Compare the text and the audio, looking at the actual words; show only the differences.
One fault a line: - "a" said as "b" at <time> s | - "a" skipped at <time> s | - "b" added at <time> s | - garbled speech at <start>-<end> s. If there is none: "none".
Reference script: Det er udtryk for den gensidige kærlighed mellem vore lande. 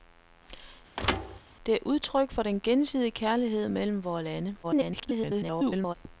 - garbled speech at 4.6-5.9 s